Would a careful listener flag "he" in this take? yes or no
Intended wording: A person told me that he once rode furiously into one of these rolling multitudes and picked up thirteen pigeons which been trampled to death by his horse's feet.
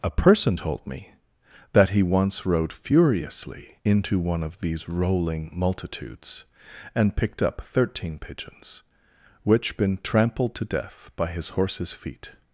no